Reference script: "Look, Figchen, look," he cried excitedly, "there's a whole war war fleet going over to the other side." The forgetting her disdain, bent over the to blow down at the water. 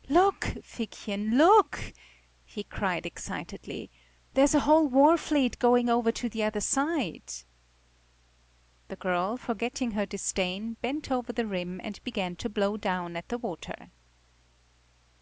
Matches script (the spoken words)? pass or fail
fail